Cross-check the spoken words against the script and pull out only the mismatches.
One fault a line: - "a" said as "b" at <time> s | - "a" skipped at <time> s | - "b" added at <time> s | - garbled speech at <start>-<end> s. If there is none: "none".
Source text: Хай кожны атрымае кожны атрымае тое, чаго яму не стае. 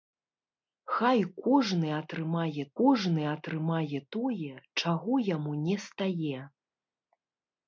none